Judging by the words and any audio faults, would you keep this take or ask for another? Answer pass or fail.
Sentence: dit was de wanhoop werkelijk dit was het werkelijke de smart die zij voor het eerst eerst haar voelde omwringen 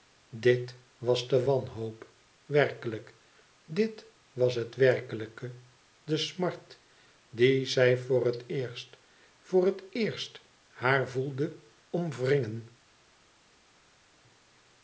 fail